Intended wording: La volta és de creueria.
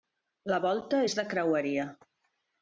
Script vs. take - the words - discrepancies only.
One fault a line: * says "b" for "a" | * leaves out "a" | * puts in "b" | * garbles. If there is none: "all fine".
all fine